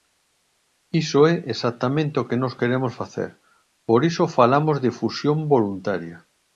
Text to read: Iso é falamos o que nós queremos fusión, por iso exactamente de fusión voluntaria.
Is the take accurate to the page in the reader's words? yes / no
no